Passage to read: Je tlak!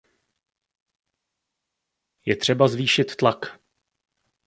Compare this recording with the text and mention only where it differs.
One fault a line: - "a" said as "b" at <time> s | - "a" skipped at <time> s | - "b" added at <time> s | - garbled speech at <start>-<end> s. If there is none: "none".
- "třeba zvýšit" added at 2.3 s